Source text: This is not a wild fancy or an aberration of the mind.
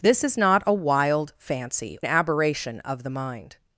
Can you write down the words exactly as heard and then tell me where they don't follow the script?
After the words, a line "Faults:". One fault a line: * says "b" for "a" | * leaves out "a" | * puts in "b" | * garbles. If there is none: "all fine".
This is not a wild fancy an aberration of the mind.
Faults:
* leaves out "or"